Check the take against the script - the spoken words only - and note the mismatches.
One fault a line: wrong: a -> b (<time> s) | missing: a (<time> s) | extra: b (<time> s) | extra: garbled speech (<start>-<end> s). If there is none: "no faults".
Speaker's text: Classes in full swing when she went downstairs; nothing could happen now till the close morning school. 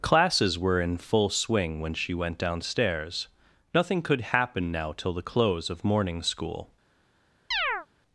extra: were (0.6 s)
extra: of (5.7 s)